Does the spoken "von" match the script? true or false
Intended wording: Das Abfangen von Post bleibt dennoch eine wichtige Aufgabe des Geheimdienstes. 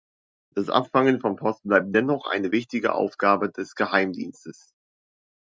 true